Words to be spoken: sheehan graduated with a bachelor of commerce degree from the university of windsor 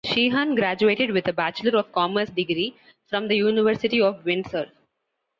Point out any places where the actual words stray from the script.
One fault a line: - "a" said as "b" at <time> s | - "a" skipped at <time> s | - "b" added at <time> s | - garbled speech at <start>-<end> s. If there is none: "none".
none